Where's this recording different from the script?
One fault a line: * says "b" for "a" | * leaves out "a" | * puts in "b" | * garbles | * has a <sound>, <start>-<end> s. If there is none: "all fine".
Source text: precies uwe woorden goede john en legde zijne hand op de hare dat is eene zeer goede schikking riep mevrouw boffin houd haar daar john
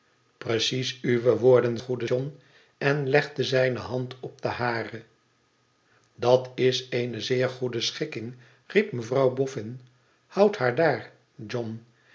all fine